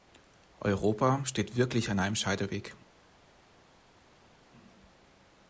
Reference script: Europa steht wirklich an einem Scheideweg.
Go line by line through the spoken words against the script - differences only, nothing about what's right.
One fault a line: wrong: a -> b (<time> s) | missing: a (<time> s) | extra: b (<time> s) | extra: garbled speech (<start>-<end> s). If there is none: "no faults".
no faults